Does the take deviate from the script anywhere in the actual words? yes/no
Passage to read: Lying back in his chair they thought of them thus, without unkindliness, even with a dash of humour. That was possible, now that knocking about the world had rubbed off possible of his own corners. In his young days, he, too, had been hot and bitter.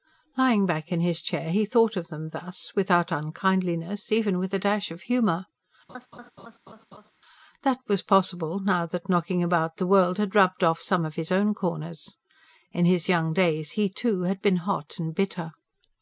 yes